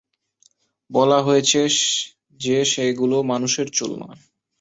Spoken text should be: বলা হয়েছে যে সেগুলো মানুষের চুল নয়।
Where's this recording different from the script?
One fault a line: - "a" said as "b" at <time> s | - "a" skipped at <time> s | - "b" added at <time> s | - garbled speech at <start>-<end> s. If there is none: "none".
none